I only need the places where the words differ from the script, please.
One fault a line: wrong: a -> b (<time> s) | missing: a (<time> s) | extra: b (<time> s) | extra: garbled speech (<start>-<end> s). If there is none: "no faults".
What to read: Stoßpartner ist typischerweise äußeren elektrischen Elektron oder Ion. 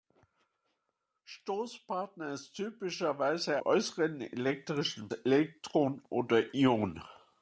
no faults